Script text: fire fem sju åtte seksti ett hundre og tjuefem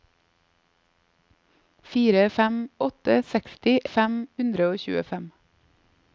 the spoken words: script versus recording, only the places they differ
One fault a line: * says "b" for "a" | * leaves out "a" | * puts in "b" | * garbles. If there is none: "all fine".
* leaves out "sju"
* says "fem" for "ett"